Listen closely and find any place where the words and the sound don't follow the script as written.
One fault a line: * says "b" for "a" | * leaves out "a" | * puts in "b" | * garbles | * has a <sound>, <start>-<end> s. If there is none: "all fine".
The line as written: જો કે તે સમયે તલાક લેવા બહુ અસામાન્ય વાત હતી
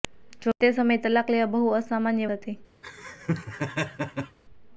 * leaves out "વાત"
* has a laugh, 2.8-4.4 s